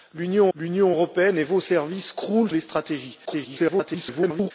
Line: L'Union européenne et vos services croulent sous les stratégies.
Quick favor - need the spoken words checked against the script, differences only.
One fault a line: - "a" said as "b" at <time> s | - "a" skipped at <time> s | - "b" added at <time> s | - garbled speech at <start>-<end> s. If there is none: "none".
- "l'union" added at 0.5 s
- "sous" skipped at 2.5 s
- garbled speech at 3.2-4.5 s